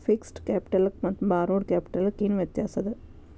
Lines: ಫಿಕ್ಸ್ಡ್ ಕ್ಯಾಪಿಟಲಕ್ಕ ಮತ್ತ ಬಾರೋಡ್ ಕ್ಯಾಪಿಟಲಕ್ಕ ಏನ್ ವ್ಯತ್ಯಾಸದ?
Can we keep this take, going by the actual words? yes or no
yes